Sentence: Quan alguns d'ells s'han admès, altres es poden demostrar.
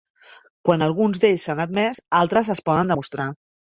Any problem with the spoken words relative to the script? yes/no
no